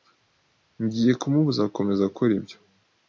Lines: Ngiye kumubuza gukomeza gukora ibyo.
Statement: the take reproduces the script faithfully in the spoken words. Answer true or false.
true